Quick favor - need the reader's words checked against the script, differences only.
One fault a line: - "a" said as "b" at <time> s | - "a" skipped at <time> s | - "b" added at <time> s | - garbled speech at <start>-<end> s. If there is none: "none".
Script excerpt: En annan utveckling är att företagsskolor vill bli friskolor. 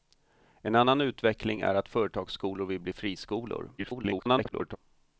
- garbled speech at 3.8-4.8 s